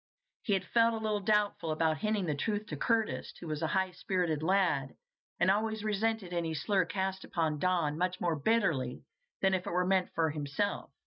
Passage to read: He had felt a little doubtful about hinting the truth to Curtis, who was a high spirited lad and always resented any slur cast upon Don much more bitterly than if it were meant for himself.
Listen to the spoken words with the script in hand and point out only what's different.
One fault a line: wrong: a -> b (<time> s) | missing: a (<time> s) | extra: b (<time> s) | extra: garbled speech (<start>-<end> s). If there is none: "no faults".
no faults